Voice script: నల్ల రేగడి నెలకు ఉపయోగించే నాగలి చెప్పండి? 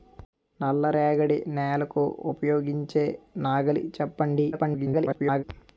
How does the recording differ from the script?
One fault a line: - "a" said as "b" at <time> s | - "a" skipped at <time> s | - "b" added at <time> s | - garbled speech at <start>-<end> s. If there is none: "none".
- garbled speech at 4.5-5.4 s